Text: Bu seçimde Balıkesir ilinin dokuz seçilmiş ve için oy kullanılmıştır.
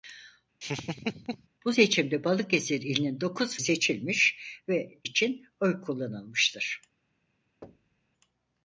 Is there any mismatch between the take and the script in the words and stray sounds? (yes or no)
yes